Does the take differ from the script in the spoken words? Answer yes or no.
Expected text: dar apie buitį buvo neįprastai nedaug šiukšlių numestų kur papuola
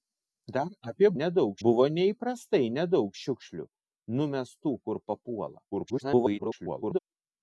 yes